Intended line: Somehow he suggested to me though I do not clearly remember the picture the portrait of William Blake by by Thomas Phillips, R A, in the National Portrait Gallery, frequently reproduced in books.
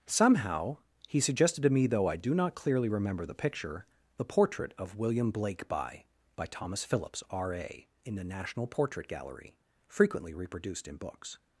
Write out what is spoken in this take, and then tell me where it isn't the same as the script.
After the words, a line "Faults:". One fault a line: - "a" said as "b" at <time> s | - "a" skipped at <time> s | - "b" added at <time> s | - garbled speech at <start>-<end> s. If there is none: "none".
Somehow he suggested to me though I do not clearly remember the picture the portrait of William Blake by by Thomas Phillips, R A, in the National Portrait Gallery, frequently reproduced in books.
Faults:
none